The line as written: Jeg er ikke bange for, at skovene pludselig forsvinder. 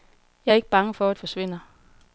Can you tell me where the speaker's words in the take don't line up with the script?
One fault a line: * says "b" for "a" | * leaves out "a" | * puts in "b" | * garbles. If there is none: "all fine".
* leaves out "skovene pludselig"